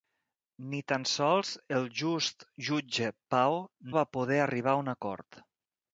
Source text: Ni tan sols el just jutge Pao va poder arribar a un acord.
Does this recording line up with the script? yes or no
yes